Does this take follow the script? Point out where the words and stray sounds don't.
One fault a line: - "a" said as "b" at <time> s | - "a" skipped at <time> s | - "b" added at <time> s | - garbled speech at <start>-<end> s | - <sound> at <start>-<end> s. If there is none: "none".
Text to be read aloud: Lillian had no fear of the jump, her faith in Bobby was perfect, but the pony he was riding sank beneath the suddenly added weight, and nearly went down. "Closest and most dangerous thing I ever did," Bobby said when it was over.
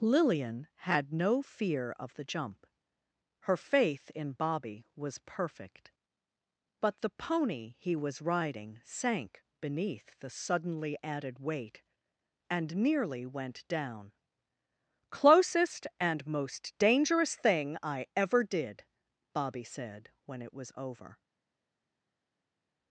none